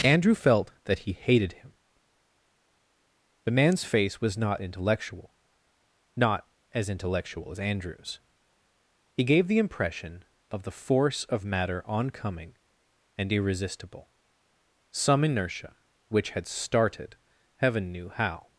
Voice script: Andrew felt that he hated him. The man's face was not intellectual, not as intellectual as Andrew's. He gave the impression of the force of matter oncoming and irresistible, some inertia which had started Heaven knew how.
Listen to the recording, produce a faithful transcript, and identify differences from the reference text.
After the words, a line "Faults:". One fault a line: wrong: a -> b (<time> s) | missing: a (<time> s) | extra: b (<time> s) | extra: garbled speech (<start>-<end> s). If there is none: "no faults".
Andrew felt that he hated him. The man's face was not intellectual, not as intellectual as Andrew's. He gave the impression of the force of matter oncoming and irresistible, some inertia which had started Heaven knew how.
Faults:
no faults